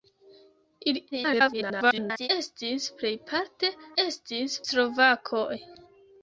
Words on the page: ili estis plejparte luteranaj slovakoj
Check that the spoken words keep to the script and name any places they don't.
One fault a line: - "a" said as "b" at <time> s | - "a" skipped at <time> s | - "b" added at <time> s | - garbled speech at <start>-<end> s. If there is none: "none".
- garbled speech at 1.1-2.3 s
- "luteranaj" said as "estis" at 4.0 s